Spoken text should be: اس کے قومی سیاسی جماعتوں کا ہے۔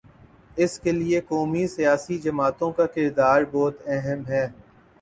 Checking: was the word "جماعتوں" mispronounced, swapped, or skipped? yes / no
no